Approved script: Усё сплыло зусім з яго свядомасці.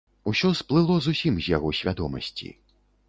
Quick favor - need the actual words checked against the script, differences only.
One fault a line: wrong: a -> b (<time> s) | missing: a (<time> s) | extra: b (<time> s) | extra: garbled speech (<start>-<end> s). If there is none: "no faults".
no faults